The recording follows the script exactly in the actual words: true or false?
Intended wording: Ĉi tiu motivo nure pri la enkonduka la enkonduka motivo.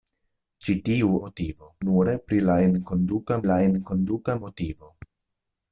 true